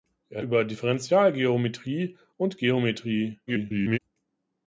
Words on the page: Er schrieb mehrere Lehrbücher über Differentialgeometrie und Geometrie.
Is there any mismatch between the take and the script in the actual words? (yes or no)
yes